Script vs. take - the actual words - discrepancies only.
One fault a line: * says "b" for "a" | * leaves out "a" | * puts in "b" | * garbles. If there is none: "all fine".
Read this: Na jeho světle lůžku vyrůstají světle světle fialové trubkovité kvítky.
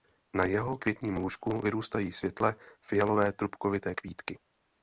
* says "květním" for "světle"
* leaves out "světle"